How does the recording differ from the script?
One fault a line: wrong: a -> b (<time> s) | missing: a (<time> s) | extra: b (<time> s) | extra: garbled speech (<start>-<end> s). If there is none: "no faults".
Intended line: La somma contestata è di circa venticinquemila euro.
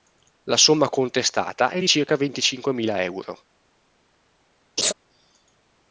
no faults